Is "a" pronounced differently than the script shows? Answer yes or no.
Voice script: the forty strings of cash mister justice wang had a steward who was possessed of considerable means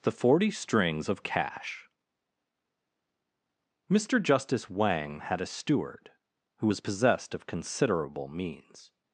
no